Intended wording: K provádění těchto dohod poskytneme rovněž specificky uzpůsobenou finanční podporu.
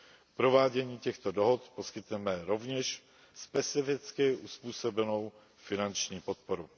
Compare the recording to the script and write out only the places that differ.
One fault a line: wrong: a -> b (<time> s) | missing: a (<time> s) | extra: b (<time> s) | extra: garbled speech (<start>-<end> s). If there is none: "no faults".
no faults